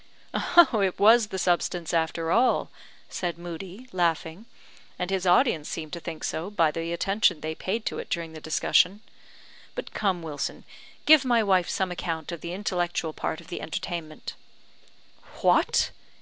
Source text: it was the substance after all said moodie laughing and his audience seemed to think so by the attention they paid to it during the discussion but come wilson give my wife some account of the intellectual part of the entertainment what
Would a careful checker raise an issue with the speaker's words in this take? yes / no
no